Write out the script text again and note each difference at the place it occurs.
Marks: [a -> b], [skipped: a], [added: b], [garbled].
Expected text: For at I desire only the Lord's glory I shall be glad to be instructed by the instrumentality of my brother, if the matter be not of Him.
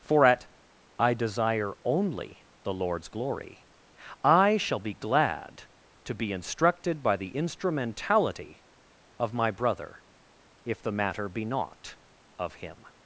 For at I desire only the Lord's glory I shall be glad to be instructed by the instrumentality of my brother, if the matter be not of Him.